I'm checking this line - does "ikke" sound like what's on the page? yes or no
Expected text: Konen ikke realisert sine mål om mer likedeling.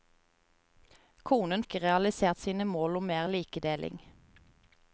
yes